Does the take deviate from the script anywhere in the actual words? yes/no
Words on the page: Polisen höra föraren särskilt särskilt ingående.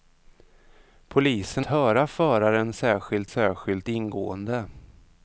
no